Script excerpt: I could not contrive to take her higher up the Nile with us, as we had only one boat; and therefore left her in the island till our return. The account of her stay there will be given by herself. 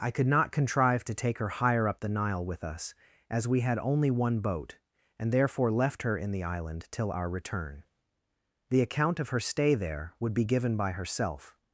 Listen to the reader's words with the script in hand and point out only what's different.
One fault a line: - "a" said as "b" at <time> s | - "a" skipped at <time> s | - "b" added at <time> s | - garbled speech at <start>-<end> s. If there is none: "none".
- "will" said as "would" at 10.2 s